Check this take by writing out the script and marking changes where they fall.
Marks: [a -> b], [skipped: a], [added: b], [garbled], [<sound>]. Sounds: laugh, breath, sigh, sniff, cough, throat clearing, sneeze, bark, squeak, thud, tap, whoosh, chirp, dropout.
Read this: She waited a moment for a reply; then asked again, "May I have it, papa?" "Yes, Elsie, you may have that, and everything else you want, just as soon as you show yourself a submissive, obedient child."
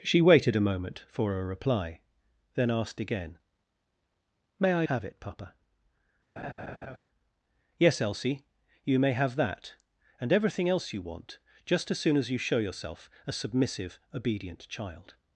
She waited a moment for a reply; then asked again, "May I have it, papa?" [laugh] "Yes, Elsie, you may have that, and everything else you want, just as soon as you show yourself a submissive, obedient child."